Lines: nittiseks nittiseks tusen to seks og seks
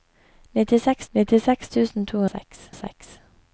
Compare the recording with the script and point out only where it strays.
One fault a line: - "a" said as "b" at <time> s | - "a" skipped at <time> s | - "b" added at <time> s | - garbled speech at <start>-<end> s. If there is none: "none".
none